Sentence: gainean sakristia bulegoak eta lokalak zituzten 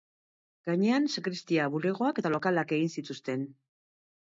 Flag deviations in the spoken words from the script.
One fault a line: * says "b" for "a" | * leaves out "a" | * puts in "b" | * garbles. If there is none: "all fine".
* puts in "egin"